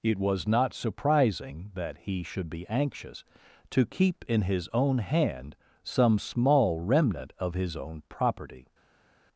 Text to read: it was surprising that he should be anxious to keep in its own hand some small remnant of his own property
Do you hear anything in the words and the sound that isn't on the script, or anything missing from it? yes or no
yes